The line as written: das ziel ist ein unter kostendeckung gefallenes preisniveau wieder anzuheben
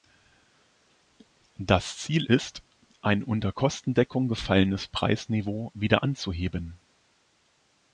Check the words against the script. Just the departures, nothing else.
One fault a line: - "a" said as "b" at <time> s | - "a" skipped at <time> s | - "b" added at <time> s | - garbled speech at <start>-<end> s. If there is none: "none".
none